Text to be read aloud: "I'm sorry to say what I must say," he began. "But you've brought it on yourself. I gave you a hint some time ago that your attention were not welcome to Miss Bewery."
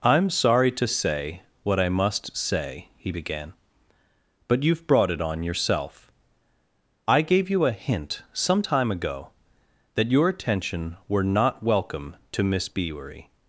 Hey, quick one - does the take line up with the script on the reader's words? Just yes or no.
yes